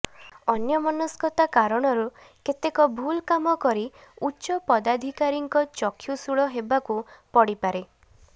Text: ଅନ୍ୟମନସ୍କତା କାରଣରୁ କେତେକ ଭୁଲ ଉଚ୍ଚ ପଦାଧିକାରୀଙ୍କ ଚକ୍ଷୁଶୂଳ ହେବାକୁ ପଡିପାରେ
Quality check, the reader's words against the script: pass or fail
fail